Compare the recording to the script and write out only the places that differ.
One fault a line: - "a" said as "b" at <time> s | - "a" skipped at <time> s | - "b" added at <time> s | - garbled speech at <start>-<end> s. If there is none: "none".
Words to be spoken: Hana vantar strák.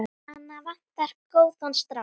- "góðan" added at 1.4 s